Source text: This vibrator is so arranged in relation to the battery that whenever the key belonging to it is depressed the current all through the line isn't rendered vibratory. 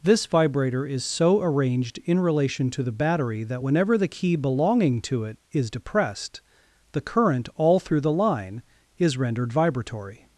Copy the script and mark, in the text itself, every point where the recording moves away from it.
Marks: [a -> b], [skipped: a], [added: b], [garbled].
This vibrator is so arranged in relation to the battery that whenever the key belonging to it is depressed the current all through the line [isn't -> is] rendered vibratory.